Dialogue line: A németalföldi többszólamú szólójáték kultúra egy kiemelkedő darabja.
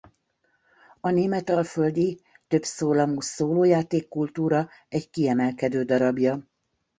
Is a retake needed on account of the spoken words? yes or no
no